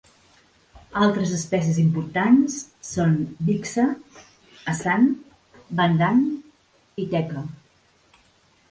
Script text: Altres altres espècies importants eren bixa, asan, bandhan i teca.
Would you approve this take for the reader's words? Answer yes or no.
no